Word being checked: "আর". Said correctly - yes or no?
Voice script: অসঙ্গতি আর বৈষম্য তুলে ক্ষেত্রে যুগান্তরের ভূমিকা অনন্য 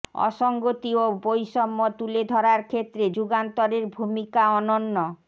no